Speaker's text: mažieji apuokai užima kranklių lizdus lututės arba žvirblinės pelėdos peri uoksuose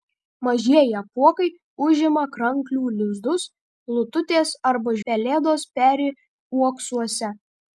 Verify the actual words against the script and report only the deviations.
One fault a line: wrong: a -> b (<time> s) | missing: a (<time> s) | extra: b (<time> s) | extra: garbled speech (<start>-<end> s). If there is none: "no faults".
missing: žvirblinės (5.0 s)